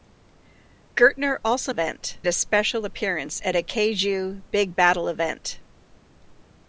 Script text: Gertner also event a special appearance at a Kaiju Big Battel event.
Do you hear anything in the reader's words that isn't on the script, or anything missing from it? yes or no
no